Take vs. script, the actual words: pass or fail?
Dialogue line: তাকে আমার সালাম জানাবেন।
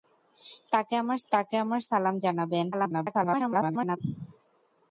fail